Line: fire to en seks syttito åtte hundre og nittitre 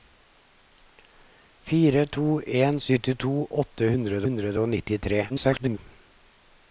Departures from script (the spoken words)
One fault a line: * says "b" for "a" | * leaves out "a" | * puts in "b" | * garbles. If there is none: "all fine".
* leaves out "seks"
* puts in "hundre"
* garbles